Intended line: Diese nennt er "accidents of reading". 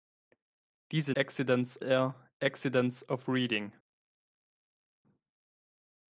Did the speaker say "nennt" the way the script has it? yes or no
no